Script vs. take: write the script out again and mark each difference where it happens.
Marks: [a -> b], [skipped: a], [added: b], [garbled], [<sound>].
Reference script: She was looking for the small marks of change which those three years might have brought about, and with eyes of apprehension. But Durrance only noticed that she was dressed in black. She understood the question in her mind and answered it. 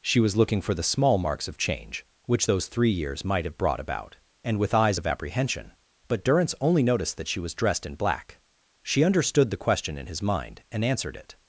She was looking for the small marks of change which those three years might have brought about, and with eyes of apprehension. But Durrance only noticed that she was dressed in black. She understood the question in [her -> his] mind and answered it.